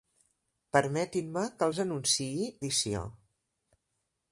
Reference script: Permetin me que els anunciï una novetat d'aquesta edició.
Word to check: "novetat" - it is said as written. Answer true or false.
false